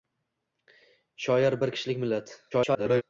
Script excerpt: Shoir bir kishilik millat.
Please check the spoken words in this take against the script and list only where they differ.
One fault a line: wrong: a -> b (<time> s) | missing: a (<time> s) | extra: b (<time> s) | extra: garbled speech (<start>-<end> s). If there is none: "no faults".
extra: garbled speech (2.5-3.0 s)